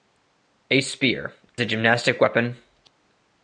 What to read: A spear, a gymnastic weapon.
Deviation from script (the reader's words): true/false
false